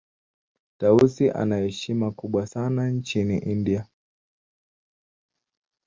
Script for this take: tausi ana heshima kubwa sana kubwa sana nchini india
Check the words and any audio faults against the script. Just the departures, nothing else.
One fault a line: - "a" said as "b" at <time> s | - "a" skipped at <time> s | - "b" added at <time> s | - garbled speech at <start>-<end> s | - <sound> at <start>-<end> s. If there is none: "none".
- "kubwa sana" skipped at 2.9 s